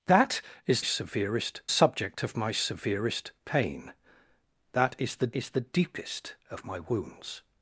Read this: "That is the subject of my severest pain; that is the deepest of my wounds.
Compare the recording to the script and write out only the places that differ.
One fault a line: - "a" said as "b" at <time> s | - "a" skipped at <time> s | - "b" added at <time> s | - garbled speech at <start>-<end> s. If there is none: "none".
- "the" said as "severest" at 0.8 s
- "is the" added at 5.3 s